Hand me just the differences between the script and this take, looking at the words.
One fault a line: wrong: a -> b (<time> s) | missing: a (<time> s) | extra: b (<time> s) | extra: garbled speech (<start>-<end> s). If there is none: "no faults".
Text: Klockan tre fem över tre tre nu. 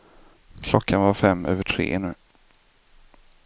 wrong: tre -> var (1.0 s)
missing: tre (2.0 s)